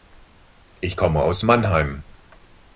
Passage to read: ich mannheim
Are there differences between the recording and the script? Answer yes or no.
yes